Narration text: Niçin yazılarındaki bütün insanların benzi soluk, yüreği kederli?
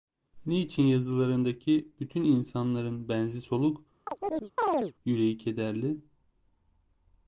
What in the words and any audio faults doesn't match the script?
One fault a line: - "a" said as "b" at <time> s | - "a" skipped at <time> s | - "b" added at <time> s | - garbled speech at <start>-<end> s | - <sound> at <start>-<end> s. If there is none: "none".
- chirp at 4.1-4.9 s